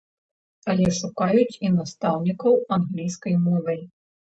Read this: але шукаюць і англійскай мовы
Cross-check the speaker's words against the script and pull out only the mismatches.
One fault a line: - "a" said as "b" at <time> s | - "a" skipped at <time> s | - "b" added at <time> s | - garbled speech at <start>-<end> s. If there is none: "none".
- "настаўнікаў" added at 1.8 s